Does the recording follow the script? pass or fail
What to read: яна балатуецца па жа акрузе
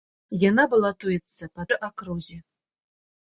pass